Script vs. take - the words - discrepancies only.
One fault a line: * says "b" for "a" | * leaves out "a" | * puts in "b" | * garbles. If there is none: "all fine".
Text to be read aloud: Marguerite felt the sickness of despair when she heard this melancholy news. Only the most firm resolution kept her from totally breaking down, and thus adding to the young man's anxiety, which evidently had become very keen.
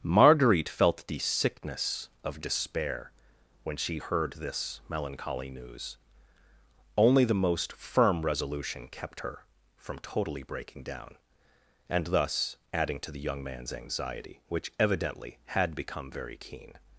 all fine